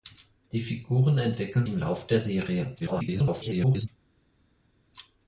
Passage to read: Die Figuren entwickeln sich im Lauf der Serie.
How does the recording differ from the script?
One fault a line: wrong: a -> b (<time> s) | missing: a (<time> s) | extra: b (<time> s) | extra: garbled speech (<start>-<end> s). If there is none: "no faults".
missing: sich (1.7 s)
extra: garbled speech (2.8-3.9 s)